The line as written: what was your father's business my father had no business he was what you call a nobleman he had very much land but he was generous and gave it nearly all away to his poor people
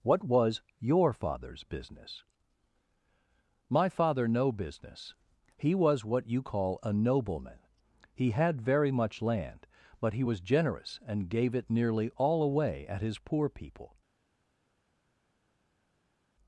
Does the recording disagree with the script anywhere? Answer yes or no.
yes